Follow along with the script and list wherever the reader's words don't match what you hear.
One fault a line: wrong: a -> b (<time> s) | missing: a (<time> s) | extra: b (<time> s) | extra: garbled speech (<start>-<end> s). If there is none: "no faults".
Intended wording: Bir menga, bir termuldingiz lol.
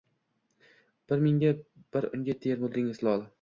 extra: unga (2.2 s)